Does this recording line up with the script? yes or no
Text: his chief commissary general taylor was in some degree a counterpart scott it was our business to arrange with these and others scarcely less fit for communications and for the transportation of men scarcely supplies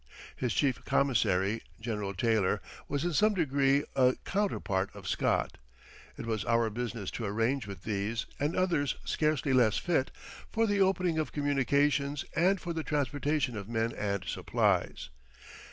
no